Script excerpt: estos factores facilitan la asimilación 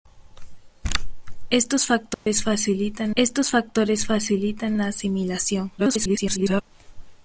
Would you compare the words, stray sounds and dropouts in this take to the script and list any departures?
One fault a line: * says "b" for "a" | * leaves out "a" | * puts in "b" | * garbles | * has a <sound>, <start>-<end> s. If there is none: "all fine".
* has a dropout, 2.1-2.3 s
* puts in "estos factores facilitan"
* garbles